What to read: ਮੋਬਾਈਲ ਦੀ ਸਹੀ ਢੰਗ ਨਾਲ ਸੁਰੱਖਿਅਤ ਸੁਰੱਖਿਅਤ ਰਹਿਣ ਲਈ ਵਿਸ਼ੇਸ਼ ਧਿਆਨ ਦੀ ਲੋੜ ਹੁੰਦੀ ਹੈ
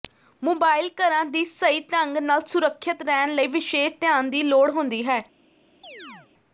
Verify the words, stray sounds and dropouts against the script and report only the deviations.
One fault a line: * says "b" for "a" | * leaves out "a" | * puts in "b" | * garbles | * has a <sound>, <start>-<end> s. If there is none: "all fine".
* puts in "ਘਰਾਂ"
* leaves out "ਸੁਰੱਖਿਅਤ"
* has a chirp, 5.8-6.3 s